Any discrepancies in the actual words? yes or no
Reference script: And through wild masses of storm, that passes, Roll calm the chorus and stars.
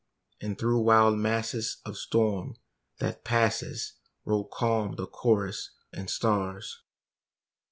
no